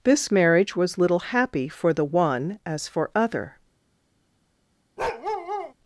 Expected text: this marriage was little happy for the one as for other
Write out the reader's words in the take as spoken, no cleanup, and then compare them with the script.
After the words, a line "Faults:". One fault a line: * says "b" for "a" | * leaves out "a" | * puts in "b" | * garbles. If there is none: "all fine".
this marriage was little happy for the one as for other
Faults:
all fine